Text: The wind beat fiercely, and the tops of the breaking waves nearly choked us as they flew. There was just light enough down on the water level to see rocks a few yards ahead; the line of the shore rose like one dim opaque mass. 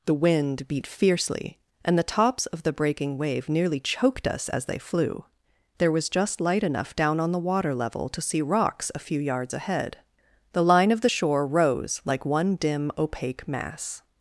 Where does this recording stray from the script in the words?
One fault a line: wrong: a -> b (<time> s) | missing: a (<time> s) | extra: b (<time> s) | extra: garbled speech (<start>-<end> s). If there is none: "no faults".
wrong: waves -> wave (3.2 s)